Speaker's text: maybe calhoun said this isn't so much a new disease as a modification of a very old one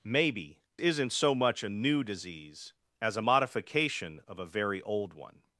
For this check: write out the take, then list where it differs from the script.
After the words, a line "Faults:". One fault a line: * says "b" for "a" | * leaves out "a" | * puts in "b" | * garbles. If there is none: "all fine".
maybe isn't so much a new disease as a modification of a very old one
Faults:
* leaves out "calhoun said this"